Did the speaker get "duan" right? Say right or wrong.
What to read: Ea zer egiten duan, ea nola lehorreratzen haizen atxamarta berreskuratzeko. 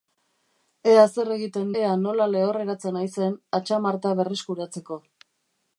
wrong